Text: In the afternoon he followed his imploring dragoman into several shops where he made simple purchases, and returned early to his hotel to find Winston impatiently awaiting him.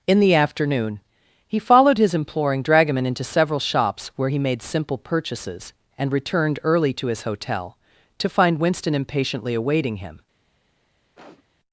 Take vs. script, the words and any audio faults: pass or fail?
fail